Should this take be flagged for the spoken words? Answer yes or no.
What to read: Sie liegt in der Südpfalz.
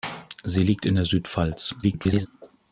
yes